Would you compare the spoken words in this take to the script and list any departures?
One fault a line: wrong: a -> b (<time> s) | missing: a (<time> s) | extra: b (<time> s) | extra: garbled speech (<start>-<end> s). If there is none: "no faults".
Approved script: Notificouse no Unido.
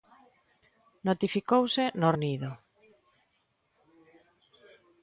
no faults